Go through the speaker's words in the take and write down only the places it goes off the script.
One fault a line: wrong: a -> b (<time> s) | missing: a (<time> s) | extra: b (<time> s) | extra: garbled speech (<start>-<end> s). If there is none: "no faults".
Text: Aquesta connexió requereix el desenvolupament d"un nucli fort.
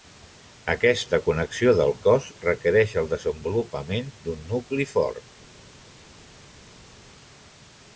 extra: del cos (1.8 s)